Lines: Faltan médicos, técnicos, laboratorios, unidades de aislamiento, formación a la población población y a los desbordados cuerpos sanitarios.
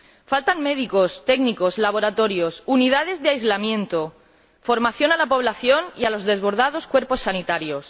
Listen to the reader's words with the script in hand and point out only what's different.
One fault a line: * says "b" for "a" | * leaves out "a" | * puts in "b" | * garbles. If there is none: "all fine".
* leaves out "población"